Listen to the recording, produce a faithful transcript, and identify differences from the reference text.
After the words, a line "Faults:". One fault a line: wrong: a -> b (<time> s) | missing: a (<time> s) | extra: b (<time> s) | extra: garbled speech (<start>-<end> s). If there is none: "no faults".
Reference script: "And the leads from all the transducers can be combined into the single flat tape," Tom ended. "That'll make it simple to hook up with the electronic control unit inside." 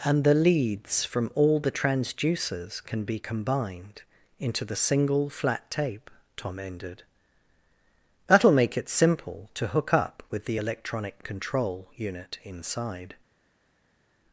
"And the leads from all the transducers can be combined into the single flat tape," Tom ended. "That'll make it simple to hook up with the electronic control unit inside."
Faults:
no faults